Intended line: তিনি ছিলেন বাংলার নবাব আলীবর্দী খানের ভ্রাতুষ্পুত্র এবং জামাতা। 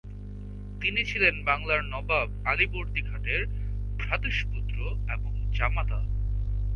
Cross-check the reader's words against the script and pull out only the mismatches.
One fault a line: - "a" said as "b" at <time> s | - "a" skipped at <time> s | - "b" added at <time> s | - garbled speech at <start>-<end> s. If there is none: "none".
none